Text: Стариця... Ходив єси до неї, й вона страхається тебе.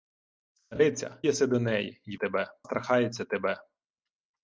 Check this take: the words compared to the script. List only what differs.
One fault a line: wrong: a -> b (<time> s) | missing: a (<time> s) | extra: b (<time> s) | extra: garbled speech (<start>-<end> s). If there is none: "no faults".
missing: Ходив (1.2 s)
wrong: вона -> тебе (2.2 s)